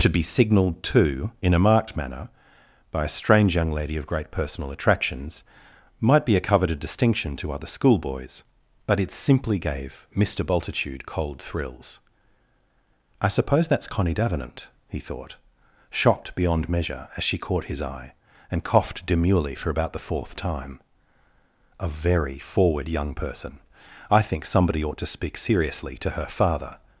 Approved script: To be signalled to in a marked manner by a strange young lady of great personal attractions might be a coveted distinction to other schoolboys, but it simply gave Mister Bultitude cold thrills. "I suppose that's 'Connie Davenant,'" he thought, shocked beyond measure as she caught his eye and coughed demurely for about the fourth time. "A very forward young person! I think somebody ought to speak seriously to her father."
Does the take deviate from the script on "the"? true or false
false